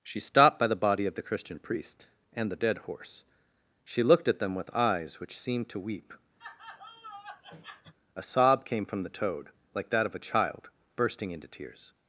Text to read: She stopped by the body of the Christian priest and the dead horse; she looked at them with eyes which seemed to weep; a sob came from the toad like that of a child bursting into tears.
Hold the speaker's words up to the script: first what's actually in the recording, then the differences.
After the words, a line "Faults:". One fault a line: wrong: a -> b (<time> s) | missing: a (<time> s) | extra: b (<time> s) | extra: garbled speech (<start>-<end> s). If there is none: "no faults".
She stopped by the body of the Christian priest and the dead horse; she looked at them with eyes which seemed to weep; a sob came from the toad like that of a child bursting into tears.
Faults:
no faults